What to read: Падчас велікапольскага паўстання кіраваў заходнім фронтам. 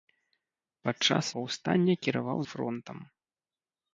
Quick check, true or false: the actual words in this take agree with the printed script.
false